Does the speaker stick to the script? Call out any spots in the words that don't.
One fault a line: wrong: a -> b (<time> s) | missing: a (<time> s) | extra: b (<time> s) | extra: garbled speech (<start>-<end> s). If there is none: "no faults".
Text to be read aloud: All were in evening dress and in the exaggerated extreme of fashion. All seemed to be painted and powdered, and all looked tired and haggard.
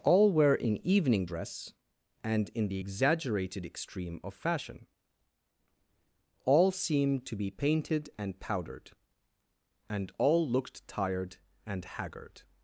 no faults